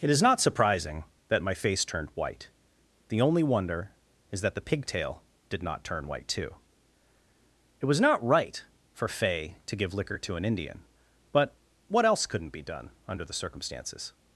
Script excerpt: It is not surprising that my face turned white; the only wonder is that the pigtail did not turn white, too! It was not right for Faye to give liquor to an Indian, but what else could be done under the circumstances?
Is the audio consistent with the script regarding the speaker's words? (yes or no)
no